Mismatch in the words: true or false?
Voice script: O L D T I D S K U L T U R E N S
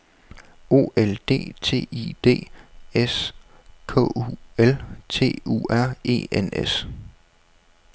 false